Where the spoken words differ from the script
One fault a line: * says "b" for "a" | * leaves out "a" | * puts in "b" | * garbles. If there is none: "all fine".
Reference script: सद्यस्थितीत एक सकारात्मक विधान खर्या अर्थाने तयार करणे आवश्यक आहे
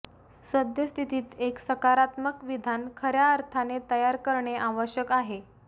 all fine